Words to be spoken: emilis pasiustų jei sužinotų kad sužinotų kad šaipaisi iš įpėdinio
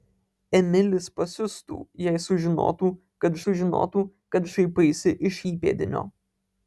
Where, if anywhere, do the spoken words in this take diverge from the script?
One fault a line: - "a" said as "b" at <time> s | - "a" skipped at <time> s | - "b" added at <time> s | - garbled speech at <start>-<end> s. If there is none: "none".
none